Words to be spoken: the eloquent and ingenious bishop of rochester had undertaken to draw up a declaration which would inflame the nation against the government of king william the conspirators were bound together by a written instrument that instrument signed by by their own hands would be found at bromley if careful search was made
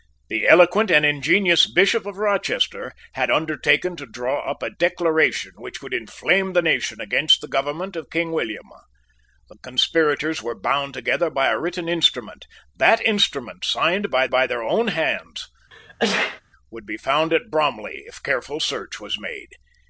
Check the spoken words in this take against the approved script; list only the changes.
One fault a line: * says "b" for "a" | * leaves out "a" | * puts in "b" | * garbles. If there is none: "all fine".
all fine